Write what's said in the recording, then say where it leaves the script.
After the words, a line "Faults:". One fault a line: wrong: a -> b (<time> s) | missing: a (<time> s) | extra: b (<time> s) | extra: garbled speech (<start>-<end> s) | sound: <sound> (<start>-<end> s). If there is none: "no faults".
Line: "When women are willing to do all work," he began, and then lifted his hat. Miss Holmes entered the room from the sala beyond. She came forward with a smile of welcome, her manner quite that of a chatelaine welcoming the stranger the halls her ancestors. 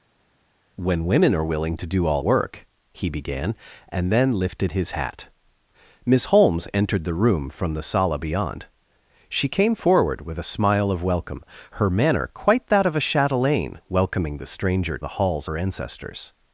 "When women are willing to do all work," he began, and then lifted his hat. Miss Holmes entered the room from the sala beyond. She came forward with a smile of welcome, her manner quite that of a chatelaine welcoming the stranger the halls her ancestors.
Faults:
no faults